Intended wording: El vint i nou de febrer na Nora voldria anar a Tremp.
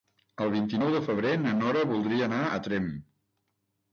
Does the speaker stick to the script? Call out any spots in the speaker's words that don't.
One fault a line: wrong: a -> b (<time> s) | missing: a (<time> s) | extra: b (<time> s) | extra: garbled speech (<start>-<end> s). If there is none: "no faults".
no faults